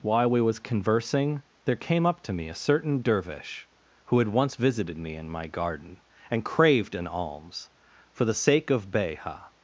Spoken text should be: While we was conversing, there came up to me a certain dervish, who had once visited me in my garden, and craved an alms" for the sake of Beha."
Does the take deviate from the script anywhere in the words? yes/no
no